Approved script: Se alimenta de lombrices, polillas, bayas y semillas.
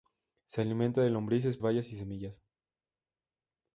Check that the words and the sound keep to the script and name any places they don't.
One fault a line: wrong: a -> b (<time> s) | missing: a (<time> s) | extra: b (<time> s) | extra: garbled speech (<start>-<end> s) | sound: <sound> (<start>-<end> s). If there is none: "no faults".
missing: polillas (1.6 s)